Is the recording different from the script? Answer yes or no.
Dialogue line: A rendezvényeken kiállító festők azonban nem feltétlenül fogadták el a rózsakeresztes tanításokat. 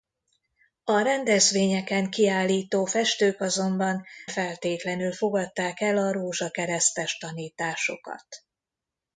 yes